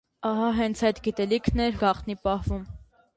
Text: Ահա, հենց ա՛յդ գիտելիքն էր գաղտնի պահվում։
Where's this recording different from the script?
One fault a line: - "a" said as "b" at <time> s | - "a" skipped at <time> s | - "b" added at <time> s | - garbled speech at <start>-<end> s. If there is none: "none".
none